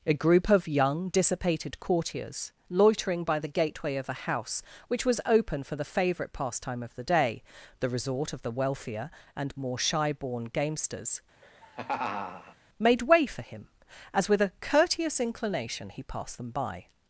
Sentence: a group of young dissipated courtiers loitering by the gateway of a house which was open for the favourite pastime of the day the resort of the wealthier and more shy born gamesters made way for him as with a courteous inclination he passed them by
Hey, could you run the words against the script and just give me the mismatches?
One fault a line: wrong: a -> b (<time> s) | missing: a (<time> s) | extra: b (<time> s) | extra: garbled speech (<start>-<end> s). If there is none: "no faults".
no faults